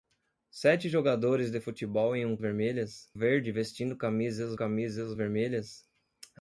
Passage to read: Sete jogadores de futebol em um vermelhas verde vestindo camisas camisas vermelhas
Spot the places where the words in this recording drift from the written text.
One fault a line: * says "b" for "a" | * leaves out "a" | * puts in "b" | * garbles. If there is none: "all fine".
all fine